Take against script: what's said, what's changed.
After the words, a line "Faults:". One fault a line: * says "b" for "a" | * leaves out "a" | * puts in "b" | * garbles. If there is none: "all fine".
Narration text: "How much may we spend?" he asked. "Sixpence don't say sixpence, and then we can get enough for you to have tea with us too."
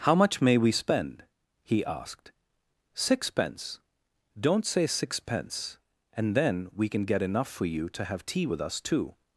"How much may we spend?" he asked. "Sixpence don't say sixpence, and then we can get enough for you to have tea with us too."
Faults:
all fine